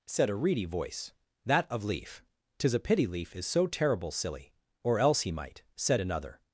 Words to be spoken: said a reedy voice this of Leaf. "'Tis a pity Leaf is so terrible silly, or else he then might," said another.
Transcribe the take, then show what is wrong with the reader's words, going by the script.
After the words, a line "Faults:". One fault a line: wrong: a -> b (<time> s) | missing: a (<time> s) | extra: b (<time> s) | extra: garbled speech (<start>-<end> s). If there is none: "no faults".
said a reedy voice that of Leaf. "'Tis a pity Leaf is so terrible silly, or else he might," said another.
Faults:
wrong: this -> that (1.4 s)
missing: then (5.3 s)